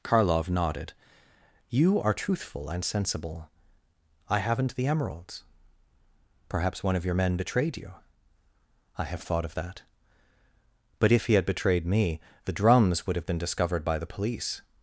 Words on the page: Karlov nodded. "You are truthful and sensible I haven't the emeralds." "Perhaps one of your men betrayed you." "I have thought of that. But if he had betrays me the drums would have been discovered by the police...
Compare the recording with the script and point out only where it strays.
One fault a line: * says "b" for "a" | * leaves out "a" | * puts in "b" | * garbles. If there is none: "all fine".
* says "betrayed" for "betrays"